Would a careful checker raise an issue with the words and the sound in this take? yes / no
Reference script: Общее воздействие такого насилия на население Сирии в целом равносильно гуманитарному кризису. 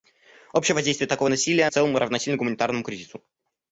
yes